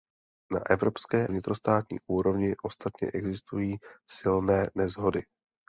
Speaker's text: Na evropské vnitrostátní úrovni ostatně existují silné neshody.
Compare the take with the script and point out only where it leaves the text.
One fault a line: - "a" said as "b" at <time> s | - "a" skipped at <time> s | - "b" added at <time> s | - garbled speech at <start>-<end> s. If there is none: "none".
none